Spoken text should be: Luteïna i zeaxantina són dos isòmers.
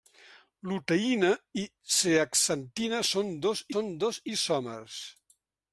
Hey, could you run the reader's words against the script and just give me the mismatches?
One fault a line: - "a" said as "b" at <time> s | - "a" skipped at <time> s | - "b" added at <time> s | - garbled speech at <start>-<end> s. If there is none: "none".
- "són dos" added at 3.7 s